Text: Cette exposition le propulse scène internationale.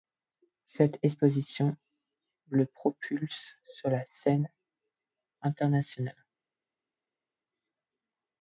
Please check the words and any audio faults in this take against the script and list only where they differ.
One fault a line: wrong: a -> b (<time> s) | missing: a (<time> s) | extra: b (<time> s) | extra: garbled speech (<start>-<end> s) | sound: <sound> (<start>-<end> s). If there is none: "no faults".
extra: sur la (3.7 s)